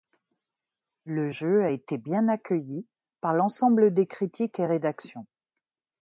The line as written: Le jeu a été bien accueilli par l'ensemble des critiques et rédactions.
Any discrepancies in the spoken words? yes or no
no